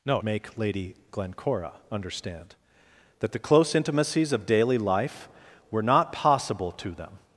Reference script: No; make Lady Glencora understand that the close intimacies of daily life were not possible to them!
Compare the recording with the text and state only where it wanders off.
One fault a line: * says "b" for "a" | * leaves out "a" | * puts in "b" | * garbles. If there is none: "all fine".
all fine